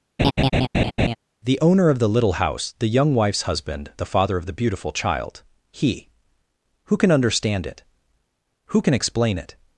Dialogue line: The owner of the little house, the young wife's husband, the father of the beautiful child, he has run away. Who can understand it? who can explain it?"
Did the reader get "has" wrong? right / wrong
wrong